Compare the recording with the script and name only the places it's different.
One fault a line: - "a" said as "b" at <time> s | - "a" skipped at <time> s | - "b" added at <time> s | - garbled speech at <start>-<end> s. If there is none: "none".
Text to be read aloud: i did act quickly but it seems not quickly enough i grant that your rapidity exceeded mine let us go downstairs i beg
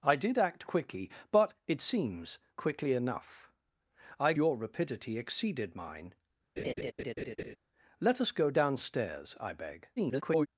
- "not" skipped at 2.4 s
- "grant that" skipped at 4.3 s
- garbled speech at 10.0-10.5 s